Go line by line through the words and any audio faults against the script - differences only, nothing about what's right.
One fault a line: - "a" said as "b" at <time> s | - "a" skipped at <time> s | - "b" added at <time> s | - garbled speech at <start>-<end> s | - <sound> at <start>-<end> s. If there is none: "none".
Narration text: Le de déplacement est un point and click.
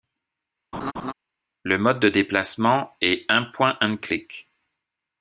- laugh at 0.7-1.1 s
- "mode" added at 1.8 s